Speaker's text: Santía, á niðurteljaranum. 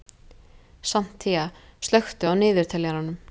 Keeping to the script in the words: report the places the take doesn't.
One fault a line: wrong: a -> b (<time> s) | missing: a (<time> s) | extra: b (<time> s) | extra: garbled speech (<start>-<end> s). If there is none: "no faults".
extra: slökktu (1.9 s)